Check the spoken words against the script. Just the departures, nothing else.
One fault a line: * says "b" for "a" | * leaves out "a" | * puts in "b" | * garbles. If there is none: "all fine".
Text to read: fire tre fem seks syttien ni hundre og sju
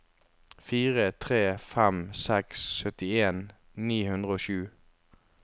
all fine